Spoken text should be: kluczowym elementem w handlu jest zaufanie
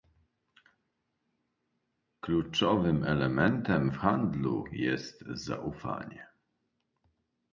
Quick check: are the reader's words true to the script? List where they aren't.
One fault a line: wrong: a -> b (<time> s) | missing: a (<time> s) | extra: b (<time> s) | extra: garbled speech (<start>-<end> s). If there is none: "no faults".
no faults